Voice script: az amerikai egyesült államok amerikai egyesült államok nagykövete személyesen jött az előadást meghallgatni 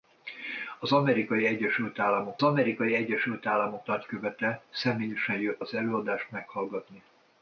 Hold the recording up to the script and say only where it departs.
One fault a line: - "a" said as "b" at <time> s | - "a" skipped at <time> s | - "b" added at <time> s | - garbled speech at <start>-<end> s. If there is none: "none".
none